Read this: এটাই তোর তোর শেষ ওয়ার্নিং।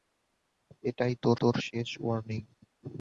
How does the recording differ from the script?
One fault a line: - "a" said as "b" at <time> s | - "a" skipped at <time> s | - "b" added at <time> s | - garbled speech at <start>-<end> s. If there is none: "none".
none